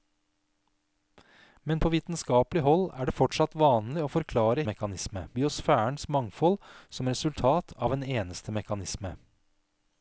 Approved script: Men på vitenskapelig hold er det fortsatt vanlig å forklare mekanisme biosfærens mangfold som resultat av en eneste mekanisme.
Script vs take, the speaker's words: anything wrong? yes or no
no